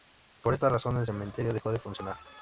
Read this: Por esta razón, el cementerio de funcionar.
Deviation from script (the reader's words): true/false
true